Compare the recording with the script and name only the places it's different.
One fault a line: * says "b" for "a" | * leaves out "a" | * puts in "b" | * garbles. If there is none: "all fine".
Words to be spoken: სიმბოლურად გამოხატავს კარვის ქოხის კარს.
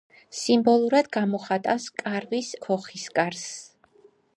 all fine